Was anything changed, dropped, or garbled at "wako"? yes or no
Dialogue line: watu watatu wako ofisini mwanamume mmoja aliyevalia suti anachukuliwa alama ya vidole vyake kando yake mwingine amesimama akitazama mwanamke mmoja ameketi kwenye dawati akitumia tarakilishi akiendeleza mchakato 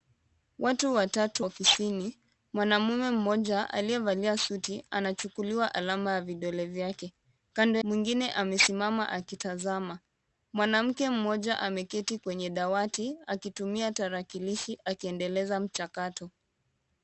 yes